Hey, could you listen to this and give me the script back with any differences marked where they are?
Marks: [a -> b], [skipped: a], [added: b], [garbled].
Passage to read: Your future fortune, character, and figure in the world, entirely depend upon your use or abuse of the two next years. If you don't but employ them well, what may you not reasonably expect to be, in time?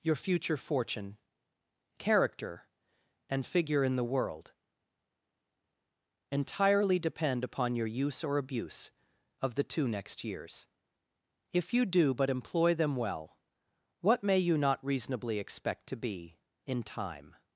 Your future fortune, character, and figure in the world, entirely depend upon your use or abuse of the two next years. If you [don't -> do] but employ them well, what may you not reasonably expect to be, in time?